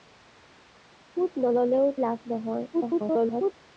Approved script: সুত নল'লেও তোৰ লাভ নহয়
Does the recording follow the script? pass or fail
fail